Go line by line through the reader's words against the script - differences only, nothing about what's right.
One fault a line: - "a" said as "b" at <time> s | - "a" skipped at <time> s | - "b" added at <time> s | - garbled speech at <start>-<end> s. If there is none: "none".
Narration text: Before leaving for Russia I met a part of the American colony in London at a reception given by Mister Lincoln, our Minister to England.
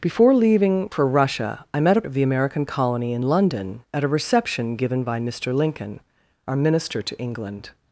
- "part" skipped at 2.0 s